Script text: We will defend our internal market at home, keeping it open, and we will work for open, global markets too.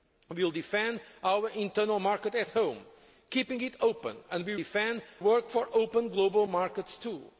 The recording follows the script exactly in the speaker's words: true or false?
false